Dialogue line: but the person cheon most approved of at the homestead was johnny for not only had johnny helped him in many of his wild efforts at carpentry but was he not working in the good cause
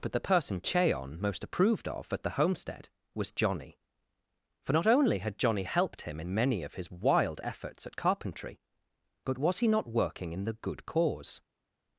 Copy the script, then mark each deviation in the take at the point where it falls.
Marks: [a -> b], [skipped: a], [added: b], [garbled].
but the person cheon most approved of at the homestead was johnny for not only had johnny helped him in many of his wild efforts at carpentry but was he not working in the good cause